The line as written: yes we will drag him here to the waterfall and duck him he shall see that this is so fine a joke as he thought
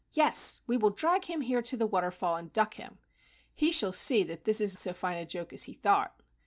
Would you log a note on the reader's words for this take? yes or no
no